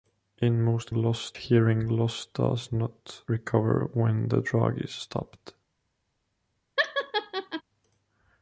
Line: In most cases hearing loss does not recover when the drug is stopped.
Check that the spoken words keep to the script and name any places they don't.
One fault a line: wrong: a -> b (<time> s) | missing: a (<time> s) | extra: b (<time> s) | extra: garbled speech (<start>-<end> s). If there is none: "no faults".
wrong: cases -> loss (0.9 s)